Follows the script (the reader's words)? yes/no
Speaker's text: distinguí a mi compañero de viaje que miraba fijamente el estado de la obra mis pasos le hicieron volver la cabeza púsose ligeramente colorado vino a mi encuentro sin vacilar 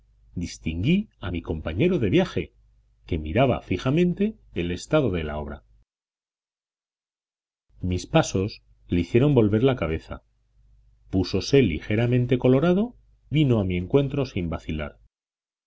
yes